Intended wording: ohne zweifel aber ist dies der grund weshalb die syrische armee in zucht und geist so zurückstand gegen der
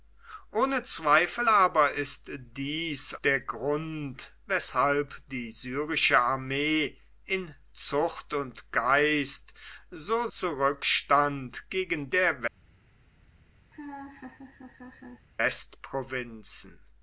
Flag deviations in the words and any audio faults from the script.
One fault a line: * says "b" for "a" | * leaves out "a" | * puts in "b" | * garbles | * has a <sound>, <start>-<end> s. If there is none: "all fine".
* has a laugh, 13.7-15.3 s